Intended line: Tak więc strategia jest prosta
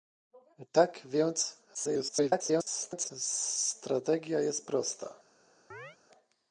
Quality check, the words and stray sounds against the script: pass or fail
fail